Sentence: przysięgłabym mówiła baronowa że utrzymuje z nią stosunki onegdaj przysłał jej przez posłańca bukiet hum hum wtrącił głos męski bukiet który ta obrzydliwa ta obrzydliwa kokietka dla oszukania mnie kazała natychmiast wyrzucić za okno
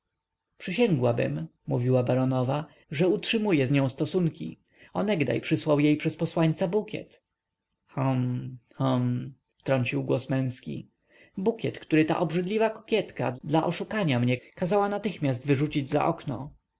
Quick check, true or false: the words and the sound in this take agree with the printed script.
false